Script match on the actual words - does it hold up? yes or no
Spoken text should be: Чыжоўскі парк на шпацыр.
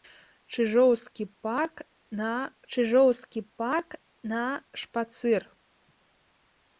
no